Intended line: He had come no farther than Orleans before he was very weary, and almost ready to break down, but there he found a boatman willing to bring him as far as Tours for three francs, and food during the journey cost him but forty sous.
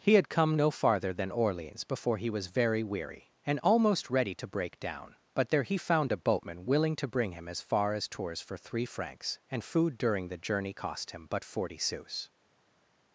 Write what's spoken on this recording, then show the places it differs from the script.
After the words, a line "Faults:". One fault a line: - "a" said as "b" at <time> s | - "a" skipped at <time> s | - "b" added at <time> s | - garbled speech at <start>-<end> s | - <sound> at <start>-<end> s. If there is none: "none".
He had come no farther than Orleans before he was very weary, and almost ready to break down, but there he found a boatman willing to bring him as far as Tours for three francs, and food during the journey cost him but forty sous.
Faults:
none